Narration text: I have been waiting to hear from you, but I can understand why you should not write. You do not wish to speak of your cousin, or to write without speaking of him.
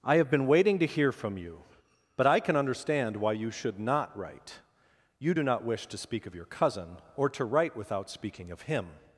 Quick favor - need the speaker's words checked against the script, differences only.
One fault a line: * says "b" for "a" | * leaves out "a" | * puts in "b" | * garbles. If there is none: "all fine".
all fine